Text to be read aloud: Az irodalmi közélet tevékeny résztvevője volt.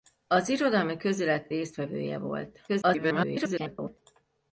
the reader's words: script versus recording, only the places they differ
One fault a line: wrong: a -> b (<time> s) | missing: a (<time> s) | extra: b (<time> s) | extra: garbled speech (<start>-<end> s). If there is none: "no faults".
missing: tevékeny (1.5 s)
extra: garbled speech (2.7-4.0 s)